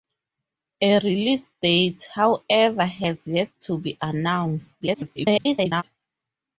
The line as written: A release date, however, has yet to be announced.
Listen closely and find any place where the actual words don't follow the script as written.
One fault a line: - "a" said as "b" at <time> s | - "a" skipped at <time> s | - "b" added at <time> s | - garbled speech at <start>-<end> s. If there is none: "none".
- garbled speech at 4.8-5.8 s